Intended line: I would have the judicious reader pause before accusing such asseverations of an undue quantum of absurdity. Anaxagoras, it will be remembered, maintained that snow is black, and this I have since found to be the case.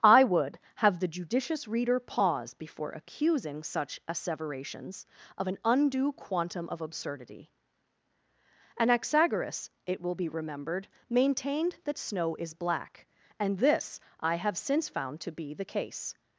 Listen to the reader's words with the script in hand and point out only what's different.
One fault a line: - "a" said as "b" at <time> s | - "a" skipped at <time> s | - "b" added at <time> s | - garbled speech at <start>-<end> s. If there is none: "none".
none